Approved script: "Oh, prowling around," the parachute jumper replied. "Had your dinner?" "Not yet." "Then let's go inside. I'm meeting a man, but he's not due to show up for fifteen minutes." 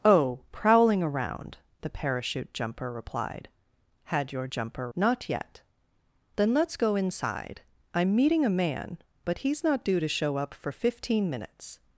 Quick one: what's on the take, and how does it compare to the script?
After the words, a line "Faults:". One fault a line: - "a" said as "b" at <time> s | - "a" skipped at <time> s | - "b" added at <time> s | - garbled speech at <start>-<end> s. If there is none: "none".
"Oh, prowling around," the parachute jumper replied. "Had your jumper?" "Not yet." "Then let's go inside. I'm meeting a man, but he's not due to show up for fifteen minutes."
Faults:
- "dinner" said as "jumper" at 4.5 s